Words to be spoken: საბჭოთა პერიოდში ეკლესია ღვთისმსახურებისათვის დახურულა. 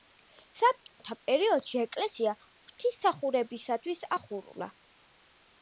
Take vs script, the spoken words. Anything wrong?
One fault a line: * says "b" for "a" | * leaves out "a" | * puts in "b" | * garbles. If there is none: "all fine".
all fine